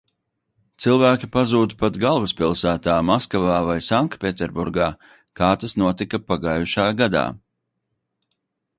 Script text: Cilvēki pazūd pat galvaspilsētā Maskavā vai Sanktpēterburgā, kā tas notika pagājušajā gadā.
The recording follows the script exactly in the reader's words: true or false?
true